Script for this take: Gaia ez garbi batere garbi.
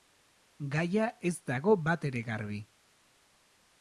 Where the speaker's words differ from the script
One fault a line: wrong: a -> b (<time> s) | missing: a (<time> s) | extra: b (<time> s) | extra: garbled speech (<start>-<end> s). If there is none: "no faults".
wrong: garbi -> dago (1.5 s)